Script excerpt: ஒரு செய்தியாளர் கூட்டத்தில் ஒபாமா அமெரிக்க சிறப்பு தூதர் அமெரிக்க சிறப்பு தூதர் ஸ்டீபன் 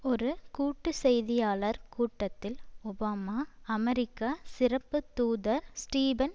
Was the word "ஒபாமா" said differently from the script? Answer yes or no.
no